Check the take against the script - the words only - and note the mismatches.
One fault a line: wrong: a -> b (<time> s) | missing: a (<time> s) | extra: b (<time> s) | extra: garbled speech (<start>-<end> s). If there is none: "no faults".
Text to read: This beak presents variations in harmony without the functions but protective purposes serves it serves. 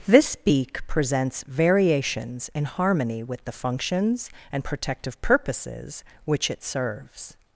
wrong: without -> with (3.2 s)
wrong: but -> and (4.5 s)
wrong: serves -> which (6.2 s)